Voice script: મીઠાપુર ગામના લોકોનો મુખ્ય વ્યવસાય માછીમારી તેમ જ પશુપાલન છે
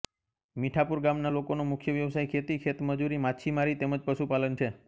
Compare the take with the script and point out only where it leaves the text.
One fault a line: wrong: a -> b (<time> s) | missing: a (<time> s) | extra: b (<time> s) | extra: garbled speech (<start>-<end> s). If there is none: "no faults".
extra: ખેતી ખેતમજૂરી (2.3 s)